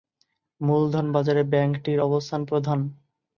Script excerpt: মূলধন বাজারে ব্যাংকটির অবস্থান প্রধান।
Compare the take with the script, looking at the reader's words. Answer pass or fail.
pass